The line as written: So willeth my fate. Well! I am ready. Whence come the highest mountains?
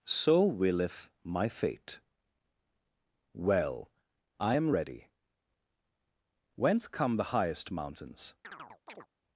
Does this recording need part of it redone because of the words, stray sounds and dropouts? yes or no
yes